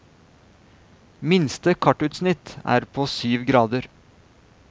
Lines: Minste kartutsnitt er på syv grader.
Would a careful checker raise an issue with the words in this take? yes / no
no